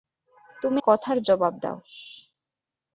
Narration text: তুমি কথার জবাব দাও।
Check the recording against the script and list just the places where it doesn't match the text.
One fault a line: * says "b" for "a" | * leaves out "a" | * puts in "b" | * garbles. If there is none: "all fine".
all fine